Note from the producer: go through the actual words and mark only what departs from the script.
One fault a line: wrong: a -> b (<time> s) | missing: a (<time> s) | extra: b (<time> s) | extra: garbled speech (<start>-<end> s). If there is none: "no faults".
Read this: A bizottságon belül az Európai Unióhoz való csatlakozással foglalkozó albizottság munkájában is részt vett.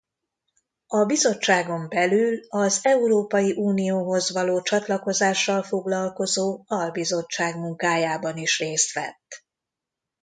no faults